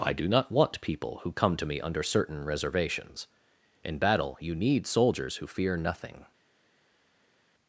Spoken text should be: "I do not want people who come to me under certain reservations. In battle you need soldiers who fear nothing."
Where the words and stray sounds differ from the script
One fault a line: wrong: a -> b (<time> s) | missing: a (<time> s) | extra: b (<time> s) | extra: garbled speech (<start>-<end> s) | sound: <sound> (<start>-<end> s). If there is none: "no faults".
no faults